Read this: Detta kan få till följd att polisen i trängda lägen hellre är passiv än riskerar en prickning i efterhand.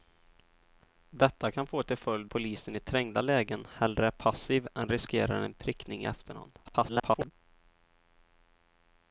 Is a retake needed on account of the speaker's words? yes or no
yes